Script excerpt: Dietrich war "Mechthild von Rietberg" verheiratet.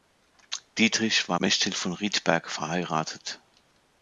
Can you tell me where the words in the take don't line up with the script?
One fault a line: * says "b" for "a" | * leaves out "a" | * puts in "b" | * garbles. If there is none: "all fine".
all fine